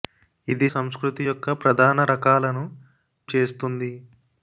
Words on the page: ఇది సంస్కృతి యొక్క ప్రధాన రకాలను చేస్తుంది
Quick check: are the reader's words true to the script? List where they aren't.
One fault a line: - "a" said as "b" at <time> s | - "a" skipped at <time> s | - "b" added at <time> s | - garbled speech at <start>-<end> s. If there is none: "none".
none